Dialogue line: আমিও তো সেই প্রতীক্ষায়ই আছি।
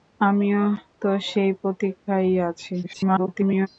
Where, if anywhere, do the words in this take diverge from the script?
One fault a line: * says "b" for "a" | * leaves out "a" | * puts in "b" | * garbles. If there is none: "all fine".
* garbles